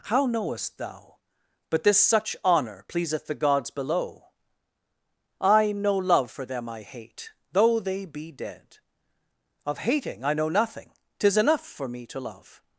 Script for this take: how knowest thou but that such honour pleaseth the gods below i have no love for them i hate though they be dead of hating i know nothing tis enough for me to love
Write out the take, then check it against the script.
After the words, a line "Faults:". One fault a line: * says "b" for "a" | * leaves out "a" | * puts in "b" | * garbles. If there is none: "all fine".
how knowest thou but this such honour pleaseth the gods below i no love for them i hate though they be dead of hating i know nothing tis enough for me to love
Faults:
* says "this" for "that"
* leaves out "have"